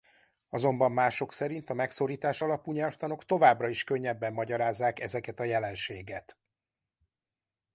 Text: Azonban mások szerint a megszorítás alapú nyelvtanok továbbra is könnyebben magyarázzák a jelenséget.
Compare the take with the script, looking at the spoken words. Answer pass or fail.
fail